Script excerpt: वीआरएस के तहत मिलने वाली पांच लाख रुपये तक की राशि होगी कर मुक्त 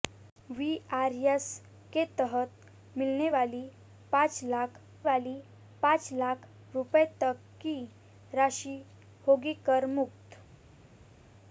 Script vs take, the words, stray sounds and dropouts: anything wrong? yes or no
yes